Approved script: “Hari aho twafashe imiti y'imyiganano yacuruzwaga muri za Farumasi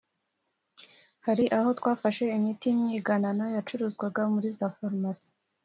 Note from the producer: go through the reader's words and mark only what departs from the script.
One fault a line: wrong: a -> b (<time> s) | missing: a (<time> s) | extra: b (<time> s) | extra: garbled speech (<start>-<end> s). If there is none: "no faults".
no faults